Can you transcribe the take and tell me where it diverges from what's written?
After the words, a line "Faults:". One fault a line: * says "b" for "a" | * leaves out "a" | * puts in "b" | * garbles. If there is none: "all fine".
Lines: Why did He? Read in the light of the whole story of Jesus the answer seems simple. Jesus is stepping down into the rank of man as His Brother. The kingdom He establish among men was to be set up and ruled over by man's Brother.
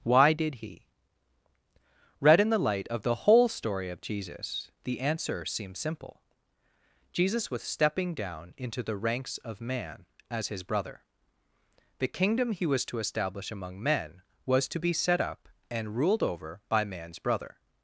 Why did He? Read in the light of the whole story of Jesus the answer seems simple. Jesus was stepping down into the ranks of man as His Brother. The kingdom He was to establish among men was to be set up and ruled over by man's Brother.
Faults:
* says "was" for "is"
* says "ranks" for "rank"
* puts in "was to"